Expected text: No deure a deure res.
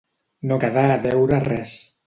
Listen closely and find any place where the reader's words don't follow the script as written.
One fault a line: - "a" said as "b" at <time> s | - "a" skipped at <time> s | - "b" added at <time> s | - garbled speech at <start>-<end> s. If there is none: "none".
- "deure" said as "quedar" at 0.6 s